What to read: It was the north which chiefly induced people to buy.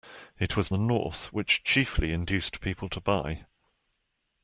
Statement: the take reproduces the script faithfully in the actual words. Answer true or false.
true